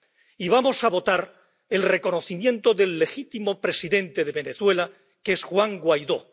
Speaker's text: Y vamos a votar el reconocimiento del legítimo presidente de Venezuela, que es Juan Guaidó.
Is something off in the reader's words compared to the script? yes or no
no